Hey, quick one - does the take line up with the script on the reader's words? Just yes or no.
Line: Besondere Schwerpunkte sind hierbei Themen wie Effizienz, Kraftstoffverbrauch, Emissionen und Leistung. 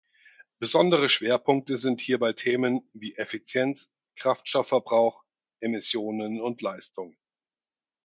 yes